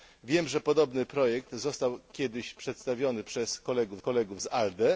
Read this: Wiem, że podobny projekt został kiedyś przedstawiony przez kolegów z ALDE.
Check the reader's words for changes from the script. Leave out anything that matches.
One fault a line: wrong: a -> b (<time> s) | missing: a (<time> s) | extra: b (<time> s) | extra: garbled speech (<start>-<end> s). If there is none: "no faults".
extra: kolegów (4.0 s)